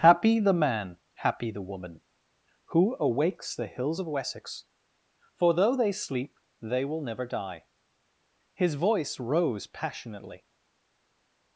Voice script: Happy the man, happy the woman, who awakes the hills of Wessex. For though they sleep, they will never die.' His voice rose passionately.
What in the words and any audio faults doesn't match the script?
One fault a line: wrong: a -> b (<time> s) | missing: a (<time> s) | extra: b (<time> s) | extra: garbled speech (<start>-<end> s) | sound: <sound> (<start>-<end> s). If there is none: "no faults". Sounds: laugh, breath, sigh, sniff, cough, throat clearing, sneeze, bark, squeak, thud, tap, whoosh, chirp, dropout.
no faults